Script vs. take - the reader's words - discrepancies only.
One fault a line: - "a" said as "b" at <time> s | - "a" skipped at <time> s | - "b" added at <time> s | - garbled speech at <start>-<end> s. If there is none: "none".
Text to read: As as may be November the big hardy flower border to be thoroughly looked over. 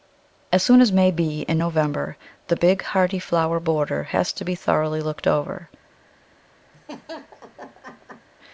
- "soon" added at 0.6 s
- "in" added at 1.4 s
- "has" added at 4.0 s